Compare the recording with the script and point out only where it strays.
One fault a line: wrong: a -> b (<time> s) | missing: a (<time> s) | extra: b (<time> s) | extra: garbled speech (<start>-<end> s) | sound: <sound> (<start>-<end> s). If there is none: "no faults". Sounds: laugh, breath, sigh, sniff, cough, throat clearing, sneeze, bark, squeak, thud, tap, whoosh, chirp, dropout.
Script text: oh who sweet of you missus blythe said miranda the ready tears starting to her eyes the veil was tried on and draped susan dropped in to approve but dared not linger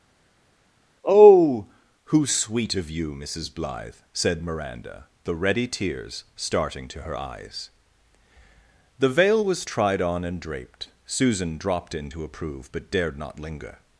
no faults